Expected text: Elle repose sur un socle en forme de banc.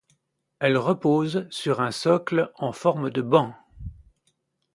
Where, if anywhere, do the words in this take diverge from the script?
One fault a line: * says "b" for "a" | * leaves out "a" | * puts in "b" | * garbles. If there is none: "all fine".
all fine